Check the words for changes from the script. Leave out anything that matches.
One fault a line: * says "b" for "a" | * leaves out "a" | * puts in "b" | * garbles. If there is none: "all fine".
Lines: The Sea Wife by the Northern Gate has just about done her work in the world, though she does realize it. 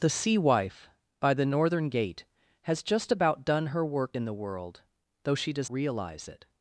all fine